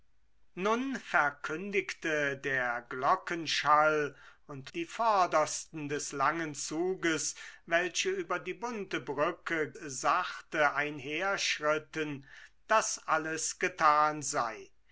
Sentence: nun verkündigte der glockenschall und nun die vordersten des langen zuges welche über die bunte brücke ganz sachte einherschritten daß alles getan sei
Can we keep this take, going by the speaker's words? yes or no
no